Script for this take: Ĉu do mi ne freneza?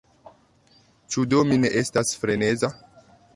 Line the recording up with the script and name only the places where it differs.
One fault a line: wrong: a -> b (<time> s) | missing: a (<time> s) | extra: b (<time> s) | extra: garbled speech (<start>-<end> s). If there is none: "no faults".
extra: estas (1.8 s)